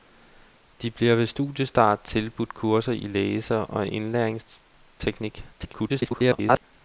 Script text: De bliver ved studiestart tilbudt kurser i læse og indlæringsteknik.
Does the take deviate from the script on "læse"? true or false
false